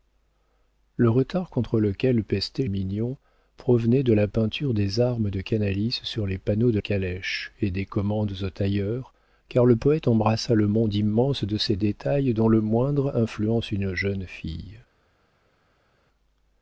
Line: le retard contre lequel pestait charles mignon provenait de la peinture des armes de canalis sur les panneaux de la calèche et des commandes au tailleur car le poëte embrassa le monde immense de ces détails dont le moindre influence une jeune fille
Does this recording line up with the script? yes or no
no